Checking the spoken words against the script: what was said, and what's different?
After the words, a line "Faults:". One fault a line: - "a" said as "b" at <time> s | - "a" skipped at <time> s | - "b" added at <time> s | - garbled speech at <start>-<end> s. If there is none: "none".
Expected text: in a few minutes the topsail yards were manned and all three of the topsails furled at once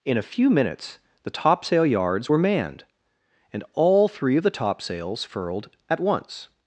in a few minutes the topsail yards were manned and all three of the topsails furled at once
Faults:
none